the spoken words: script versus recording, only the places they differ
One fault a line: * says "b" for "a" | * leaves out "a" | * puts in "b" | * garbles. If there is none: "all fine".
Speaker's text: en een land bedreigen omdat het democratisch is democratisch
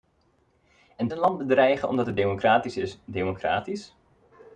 all fine